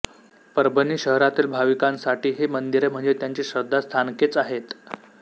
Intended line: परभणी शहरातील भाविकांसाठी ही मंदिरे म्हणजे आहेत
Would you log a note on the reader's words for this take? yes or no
yes